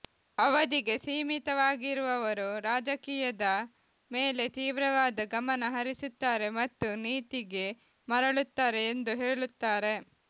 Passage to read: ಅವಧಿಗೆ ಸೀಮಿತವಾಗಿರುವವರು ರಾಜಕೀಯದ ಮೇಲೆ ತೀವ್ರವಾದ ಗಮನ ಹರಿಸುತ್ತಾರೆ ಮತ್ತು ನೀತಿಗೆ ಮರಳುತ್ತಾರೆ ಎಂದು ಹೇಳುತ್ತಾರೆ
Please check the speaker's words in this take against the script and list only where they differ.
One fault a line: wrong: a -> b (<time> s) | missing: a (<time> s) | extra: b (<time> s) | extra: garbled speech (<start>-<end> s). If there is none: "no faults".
no faults